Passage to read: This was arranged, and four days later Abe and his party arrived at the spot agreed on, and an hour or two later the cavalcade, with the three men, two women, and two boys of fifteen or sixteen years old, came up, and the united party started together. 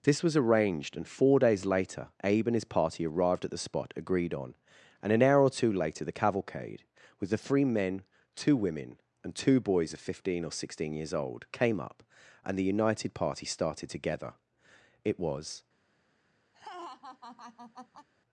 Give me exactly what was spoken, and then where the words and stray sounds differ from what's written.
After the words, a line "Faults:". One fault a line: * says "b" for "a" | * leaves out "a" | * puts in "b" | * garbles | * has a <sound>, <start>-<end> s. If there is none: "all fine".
This was arranged, and four days later Abe and his party arrived at the spot agreed on, and an hour or two later the cavalcade, with the three men, two women, and two boys of fifteen or sixteen years old, came up, and the united party started together. It was
Faults:
* puts in "It was"
* has a laugh, 16.5-18.1 s